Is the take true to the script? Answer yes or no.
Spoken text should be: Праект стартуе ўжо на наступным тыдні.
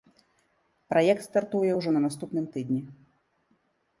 yes